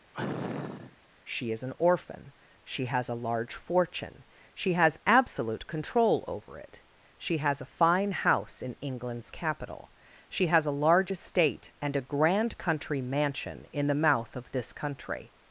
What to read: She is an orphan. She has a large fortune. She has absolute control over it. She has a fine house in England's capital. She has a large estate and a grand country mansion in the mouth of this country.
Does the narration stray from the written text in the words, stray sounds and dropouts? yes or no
yes